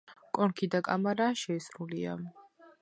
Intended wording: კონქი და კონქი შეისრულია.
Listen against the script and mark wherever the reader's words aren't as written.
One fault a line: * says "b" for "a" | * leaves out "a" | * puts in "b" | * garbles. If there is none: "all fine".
* says "კამარა" for "კონქი"